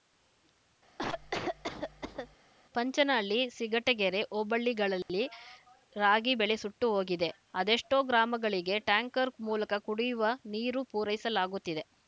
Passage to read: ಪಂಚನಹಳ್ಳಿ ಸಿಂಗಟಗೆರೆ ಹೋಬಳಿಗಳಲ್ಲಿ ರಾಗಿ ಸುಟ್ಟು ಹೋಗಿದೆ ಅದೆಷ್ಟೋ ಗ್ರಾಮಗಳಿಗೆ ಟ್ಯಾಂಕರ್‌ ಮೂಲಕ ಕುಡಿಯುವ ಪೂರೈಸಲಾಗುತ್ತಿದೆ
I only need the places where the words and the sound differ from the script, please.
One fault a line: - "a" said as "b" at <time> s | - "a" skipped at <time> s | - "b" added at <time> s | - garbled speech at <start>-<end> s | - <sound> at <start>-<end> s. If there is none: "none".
- cough at 1.0-2.4 s
- dropout at 5.0-5.1 s
- "ಬೆಳೆ" added at 6.4 s
- "ನೀರು" added at 10.5 s